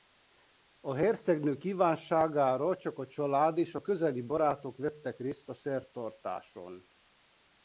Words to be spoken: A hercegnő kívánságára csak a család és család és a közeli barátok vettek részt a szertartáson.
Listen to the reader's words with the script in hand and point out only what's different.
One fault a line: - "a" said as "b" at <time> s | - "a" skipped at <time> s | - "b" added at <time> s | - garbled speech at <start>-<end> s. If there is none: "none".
- "család és" skipped at 3.8 s